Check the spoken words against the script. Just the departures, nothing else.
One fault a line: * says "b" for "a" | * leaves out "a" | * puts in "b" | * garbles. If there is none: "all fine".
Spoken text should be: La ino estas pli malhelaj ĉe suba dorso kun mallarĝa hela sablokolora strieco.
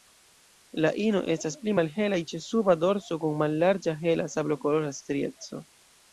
all fine